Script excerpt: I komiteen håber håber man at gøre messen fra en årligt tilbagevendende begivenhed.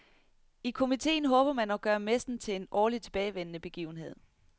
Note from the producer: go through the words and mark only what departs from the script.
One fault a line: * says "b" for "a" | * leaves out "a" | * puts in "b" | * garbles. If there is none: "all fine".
* leaves out "håber"
* says "til" for "fra"